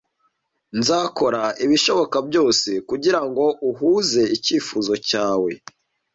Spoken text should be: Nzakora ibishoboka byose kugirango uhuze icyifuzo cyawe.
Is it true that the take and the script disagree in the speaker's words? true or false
false